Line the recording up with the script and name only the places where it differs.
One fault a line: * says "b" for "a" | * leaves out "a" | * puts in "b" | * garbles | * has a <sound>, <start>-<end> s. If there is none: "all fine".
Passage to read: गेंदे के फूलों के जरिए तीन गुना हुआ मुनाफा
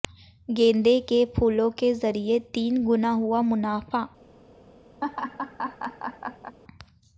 * has a laugh, 5.0-6.6 s